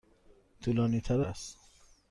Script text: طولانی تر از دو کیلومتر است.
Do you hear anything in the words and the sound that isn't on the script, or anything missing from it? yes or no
yes